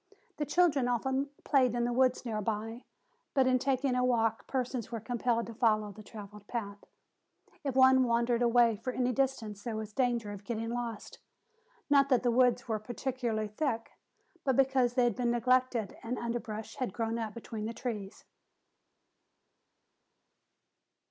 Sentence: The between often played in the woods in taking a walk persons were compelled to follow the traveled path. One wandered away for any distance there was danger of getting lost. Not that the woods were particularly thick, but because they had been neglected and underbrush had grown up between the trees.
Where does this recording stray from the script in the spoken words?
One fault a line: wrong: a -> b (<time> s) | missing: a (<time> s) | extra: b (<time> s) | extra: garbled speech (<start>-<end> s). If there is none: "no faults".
wrong: between -> children (0.5 s)
extra: near by but (2.2 s)
extra: If (7.6 s)